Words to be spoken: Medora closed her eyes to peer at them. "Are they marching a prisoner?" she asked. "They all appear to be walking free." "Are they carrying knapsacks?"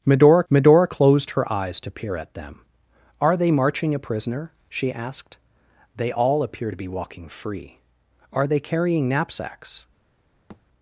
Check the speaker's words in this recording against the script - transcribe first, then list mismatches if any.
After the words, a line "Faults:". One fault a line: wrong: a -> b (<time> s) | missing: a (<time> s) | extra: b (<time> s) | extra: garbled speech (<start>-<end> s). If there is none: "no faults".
Medora medora closed her eyes to peer at them. "Are they marching a prisoner?" she asked. "They all appear to be walking free." "Are they carrying knapsacks?"
Faults:
extra: medora (0.5 s)